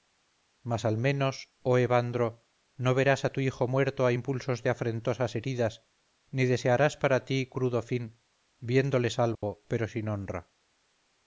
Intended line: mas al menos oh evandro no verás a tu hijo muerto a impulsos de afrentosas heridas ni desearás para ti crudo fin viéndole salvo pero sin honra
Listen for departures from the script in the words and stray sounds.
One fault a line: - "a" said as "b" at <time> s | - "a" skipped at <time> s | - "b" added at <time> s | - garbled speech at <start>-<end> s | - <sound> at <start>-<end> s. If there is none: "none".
- dropout at 9.3-9.4 s